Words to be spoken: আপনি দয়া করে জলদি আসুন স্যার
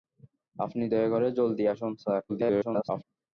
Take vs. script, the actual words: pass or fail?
fail